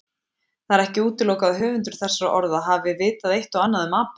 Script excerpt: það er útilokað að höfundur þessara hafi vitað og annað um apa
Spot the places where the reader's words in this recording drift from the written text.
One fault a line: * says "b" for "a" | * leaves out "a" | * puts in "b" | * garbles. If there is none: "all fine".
* puts in "ekki"
* puts in "orða"
* puts in "eitt"